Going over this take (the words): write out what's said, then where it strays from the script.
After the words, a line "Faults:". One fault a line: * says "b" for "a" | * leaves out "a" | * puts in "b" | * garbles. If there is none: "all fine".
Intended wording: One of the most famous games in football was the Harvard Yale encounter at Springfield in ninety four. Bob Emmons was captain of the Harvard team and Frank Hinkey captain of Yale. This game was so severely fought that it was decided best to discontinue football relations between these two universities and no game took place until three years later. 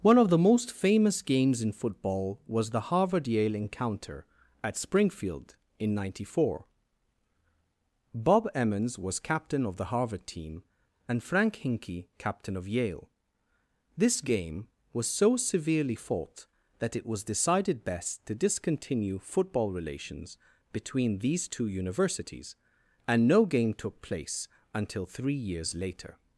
One of the most famous games in football was the Harvard Yale encounter at Springfield in ninety four. Bob Emmons was captain of the Harvard team and Frank Hinkey captain of Yale. This game was so severely fought that it was decided best to discontinue football relations between these two universities and no game took place until three years later.
Faults:
all fine